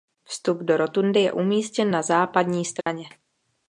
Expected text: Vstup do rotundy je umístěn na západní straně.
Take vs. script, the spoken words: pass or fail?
pass